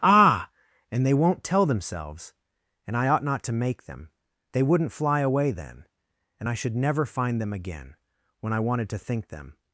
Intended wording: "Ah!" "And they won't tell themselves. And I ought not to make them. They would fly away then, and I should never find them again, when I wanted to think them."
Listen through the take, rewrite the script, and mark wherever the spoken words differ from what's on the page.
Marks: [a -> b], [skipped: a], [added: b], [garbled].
"Ah!" "And they won't tell themselves. And I ought not to make them. They [would -> wouldn't] fly away then, and I should never find them again, when I wanted to think them."